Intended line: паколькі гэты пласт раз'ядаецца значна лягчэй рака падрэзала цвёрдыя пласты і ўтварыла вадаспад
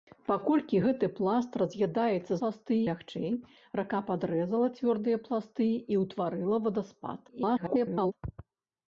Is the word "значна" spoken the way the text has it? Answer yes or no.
no